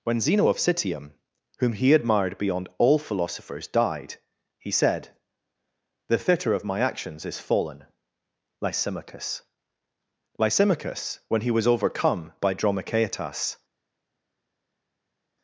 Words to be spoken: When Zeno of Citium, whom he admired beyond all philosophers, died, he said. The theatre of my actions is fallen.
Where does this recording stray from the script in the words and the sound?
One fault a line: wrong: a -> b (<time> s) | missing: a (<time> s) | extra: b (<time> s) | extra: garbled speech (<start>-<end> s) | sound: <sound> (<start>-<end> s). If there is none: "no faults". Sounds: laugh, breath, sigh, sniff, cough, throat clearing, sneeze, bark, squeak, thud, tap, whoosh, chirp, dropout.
extra: Lysimachus Lysimachus when he was overcome by Dromichaetas (8.6 s)